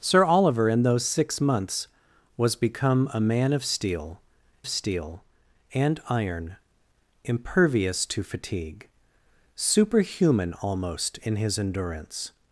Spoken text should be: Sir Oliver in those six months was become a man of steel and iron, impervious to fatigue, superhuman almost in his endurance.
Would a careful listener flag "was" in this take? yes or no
no